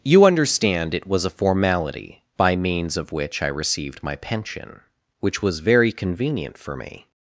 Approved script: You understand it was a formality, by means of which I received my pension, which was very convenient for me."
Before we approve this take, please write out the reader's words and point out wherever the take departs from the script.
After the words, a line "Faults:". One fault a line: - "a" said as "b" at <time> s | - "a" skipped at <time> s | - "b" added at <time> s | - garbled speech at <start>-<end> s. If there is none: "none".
You understand it was a formality, by means of which I received my pension, which was very convenient for me."
Faults:
none